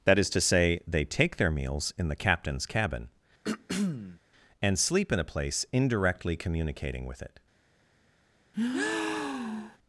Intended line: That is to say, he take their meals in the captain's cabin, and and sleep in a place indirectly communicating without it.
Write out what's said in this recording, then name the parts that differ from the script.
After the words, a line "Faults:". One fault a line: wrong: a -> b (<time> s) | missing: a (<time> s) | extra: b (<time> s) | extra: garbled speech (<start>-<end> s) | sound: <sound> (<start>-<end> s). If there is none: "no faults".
That is to say, they take their meals in the captain's cabin, and sleep in a place indirectly communicating with it.
Faults:
wrong: he -> they (0.9 s)
sound: throat clearing (3.4-4.2 s)
missing: and (4.8 s)
wrong: without -> with (7.1 s)
sound: breath (8.5-9.8 s)